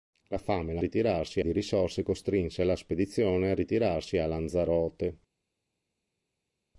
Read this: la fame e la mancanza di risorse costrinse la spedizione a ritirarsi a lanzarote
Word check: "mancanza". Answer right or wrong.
wrong